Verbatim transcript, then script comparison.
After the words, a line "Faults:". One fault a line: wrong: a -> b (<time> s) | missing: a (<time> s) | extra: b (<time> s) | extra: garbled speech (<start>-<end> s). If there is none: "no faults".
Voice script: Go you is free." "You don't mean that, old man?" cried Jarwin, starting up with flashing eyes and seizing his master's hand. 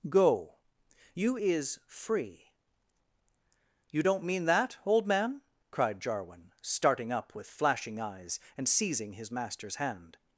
Go you is free." "You don't mean that, old man?" cried Jarwin, starting up with flashing eyes and seizing his master's hand.
Faults:
no faults